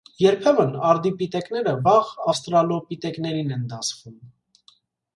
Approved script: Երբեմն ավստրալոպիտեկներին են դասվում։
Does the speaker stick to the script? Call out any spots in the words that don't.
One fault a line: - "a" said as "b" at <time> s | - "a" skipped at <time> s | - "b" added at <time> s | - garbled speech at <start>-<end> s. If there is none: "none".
- "արդիպիտեկները վաղ" added at 0.9 s